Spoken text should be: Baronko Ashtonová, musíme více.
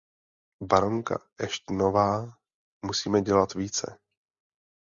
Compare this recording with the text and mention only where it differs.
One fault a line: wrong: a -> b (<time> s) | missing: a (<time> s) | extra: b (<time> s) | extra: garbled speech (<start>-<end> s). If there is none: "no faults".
extra: dělat (3.2 s)